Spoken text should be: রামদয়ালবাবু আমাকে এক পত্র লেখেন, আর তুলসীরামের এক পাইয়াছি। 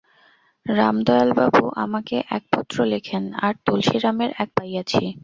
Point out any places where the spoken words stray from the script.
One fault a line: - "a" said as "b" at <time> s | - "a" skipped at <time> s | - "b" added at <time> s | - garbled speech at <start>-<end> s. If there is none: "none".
none